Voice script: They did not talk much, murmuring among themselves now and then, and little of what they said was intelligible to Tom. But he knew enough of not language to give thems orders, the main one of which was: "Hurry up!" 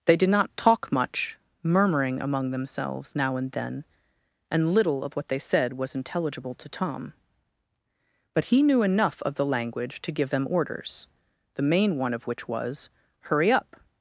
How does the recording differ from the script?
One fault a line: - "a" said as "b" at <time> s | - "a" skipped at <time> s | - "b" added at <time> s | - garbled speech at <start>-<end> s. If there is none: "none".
- "not" said as "the" at 9.3 s
- "thems" said as "them" at 10.3 s